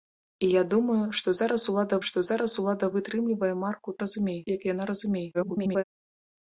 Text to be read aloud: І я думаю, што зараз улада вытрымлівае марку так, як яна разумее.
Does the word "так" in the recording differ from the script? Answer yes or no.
yes